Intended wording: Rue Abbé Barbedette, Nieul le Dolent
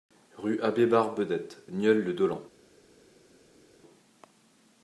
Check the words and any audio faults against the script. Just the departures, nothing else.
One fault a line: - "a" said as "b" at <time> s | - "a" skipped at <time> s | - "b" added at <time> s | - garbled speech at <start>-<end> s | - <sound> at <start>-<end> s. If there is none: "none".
none